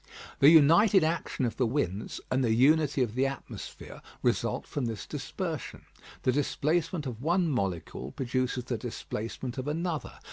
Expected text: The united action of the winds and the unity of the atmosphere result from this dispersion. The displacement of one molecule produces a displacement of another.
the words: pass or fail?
fail